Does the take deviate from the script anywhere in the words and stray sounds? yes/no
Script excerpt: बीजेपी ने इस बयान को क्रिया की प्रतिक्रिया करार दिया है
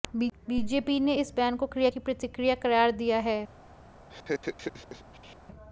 yes